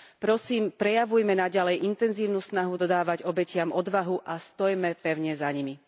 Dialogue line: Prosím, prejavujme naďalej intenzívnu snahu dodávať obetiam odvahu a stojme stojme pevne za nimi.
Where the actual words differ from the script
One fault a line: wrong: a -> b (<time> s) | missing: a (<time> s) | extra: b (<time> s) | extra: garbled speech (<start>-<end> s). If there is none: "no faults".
missing: stojme (5.0 s)